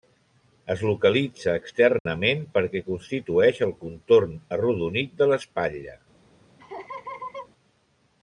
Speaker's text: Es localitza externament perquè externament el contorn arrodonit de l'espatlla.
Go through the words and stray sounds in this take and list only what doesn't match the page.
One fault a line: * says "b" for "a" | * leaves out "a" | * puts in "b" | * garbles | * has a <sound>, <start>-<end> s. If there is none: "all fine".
* has a dropout, 2.0-2.1 s
* says "constitueix" for "externament"
* has a laugh, 6.6-7.5 s